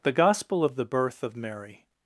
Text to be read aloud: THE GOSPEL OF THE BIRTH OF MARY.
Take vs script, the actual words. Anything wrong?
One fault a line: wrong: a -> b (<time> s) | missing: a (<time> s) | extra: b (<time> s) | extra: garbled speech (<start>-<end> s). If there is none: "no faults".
no faults